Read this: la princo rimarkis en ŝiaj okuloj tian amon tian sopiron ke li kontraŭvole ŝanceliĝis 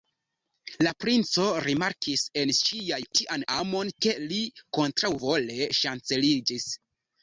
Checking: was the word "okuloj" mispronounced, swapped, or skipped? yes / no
yes